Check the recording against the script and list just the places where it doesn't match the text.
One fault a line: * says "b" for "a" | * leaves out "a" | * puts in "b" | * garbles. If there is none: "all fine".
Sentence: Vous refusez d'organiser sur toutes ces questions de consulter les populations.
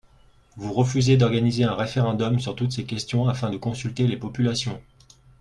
* puts in "un référendum"
* puts in "afin"